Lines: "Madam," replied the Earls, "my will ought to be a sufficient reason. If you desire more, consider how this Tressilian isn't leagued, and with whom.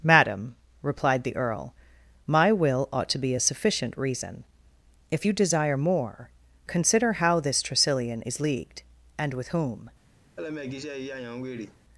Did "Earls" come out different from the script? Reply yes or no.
yes